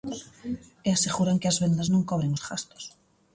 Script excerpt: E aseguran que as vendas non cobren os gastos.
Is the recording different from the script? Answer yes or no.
no